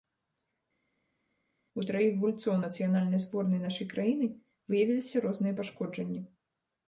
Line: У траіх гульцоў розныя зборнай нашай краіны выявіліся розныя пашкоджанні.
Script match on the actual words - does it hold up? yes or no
no